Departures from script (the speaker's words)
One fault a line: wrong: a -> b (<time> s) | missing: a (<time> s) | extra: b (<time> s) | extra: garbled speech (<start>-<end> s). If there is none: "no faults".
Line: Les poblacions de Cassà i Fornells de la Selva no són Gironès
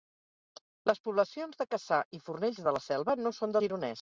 no faults